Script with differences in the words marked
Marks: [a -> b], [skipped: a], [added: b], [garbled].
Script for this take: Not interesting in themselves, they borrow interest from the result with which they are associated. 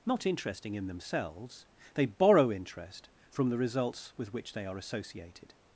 Not interesting in themselves, they borrow interest from the [result -> results] with which they are associated.